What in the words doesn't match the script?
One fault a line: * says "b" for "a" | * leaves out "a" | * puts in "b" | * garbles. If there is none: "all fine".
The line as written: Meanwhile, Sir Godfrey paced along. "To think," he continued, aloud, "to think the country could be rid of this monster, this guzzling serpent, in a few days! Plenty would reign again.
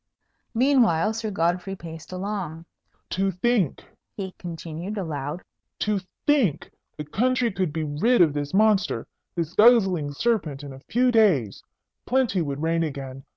all fine